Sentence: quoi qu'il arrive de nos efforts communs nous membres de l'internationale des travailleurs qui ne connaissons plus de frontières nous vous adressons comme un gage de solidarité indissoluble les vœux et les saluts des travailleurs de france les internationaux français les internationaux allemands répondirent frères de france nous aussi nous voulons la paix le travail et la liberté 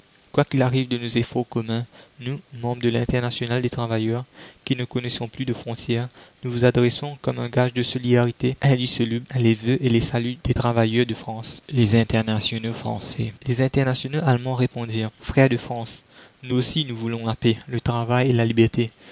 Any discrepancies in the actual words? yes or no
no